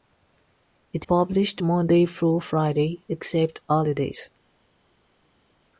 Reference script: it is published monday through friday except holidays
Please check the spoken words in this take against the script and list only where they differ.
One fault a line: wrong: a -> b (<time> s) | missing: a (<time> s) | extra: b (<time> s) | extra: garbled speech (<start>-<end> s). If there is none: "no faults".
missing: is (1.1 s)